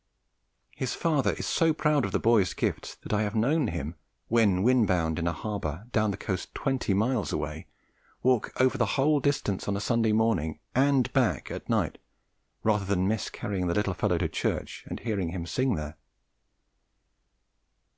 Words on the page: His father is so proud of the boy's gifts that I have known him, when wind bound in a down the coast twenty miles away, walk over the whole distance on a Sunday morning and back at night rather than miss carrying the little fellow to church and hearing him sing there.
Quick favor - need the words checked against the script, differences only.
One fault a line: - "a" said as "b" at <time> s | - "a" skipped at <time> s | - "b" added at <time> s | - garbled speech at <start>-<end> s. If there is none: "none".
- "harbour" added at 5.3 s